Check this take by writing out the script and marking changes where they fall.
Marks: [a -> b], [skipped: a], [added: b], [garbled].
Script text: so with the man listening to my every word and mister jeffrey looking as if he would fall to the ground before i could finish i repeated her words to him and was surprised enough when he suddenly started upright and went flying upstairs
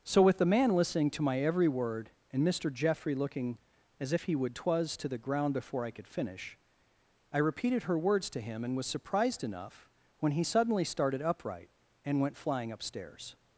so with the man listening to my every word and mister jeffrey looking as if he would [fall -> twas] to the ground before i could finish i repeated her words to him and was surprised enough when he suddenly started upright and went flying upstairs